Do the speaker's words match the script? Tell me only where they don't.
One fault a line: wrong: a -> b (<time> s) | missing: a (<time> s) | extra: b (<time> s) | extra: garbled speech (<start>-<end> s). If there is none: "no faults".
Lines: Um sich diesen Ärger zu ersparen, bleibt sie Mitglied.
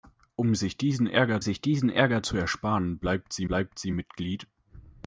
extra: sich diesen Ärger (1.4 s)
extra: bleibt sie (3.4 s)